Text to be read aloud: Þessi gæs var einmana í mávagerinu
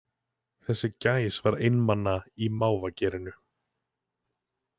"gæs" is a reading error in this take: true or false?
false